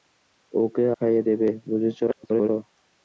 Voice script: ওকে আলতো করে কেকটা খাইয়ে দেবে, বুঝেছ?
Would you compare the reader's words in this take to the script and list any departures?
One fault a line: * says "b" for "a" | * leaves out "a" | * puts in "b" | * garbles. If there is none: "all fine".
* leaves out "আলতো করে কেকটা"
* garbles